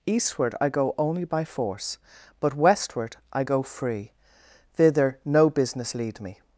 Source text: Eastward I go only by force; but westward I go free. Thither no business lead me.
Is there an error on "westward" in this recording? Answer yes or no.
no